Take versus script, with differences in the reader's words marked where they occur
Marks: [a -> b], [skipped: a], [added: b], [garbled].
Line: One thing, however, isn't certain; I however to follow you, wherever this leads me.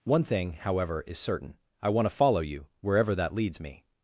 One thing, however, [isn't -> is] certain; I [however -> want] to follow you, wherever [this -> that] leads me.